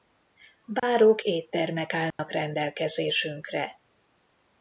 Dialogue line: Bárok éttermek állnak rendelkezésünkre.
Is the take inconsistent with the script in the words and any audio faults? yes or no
yes